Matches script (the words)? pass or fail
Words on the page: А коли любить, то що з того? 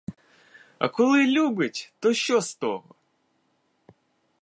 pass